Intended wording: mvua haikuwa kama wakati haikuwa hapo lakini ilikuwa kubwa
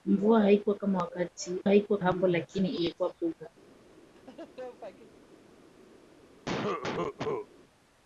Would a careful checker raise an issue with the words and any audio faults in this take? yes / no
yes